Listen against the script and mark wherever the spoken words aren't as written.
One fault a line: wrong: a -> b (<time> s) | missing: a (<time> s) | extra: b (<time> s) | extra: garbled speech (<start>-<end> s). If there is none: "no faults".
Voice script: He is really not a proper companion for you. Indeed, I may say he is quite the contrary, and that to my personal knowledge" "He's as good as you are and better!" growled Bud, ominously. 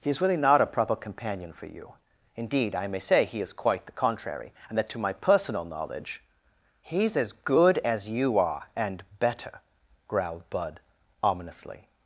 no faults